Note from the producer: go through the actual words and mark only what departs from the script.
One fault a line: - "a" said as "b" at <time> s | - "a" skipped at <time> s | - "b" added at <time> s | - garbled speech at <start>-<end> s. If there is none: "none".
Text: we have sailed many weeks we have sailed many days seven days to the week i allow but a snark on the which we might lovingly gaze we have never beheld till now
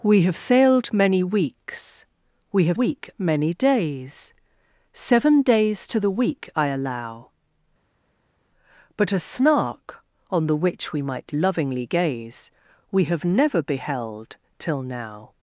- "sailed" said as "week" at 2.7 s